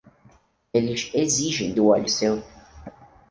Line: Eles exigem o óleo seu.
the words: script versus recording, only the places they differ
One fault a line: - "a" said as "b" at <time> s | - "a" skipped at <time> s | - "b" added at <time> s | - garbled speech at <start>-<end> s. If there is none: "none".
none